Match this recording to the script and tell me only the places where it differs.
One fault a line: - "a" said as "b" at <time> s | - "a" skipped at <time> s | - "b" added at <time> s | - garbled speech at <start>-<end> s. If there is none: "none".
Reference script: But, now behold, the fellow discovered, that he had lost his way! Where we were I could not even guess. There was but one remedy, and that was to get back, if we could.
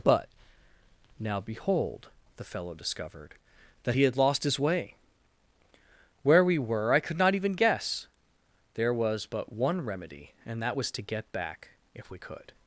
none